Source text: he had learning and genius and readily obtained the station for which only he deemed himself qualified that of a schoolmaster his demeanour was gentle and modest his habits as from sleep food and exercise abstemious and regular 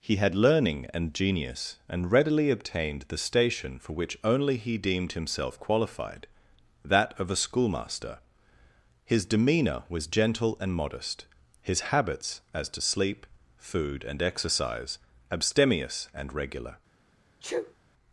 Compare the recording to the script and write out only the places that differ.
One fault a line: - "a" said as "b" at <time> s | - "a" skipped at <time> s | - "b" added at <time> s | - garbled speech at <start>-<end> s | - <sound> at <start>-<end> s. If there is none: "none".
- "from" said as "to" at 12.7 s
- sneeze at 17.4-17.7 s